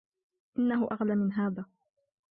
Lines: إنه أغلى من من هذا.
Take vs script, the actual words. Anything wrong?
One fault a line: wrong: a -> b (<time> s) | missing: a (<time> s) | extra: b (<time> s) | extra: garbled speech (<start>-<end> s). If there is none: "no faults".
missing: من (1.3 s)